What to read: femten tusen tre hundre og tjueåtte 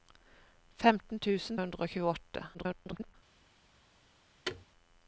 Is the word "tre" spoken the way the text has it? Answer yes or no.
no